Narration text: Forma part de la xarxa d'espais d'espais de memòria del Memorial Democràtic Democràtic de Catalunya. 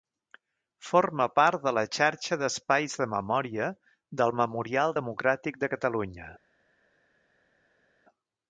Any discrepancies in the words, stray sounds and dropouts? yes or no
yes